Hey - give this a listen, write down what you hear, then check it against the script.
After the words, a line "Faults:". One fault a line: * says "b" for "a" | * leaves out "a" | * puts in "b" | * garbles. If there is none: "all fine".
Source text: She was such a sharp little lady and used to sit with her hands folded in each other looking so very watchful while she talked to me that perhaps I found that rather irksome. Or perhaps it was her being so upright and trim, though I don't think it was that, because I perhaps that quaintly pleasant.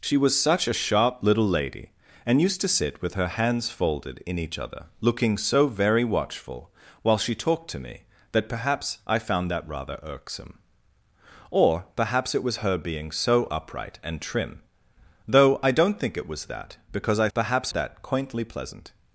She was such a sharp little lady and used to sit with her hands folded in each other looking so very watchful while she talked to me that perhaps I found that rather irksome. Or perhaps it was her being so upright and trim, though I don't think it was that, because I perhaps that quaintly pleasant.
Faults:
all fine